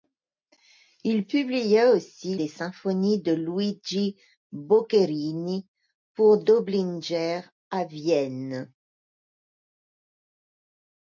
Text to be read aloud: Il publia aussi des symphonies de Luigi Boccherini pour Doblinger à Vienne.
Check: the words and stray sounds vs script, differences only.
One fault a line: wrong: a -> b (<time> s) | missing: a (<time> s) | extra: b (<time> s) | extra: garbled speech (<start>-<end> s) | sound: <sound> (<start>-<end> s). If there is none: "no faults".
no faults